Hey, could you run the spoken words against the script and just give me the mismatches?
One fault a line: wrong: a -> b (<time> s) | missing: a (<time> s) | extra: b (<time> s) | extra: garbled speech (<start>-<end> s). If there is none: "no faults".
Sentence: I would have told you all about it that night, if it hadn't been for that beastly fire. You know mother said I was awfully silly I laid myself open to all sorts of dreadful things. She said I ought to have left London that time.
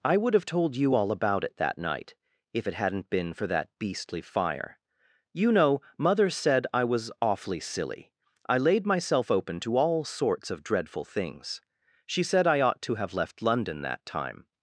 no faults